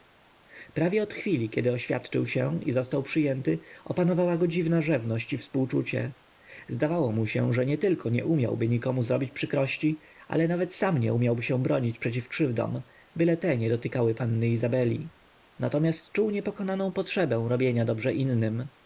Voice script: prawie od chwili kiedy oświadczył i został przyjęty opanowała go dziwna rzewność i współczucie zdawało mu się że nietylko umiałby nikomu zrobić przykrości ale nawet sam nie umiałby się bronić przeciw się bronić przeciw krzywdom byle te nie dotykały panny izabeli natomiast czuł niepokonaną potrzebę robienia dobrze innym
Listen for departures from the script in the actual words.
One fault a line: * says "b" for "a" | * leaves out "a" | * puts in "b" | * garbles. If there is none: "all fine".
* puts in "się"
* puts in "nie"
* leaves out "się bronić przeciw"